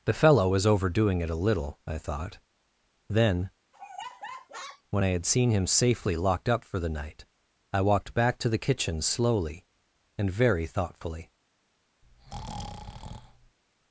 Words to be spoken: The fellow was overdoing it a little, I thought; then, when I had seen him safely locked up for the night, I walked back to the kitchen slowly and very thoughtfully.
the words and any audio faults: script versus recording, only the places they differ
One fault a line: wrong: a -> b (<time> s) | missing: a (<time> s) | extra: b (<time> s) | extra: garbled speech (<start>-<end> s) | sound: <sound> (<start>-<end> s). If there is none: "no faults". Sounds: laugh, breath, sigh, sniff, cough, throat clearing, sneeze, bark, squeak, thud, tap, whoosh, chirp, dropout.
sound: laugh (3.7-4.8 s)
sound: breath (12.0-13.6 s)